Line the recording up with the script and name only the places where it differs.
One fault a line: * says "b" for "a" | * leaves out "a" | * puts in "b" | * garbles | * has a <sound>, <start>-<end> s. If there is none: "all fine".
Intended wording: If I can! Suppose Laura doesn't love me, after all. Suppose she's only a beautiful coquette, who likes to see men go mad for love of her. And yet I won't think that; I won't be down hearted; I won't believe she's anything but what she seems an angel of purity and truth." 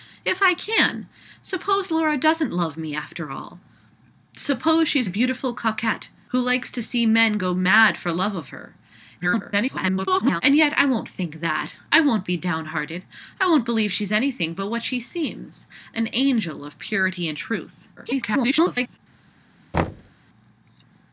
* leaves out "only"
* garbles
* garbles
* has a thud, 19.7-20.1 s